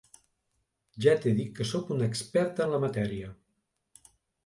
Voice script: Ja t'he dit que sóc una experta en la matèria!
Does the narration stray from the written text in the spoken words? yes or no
no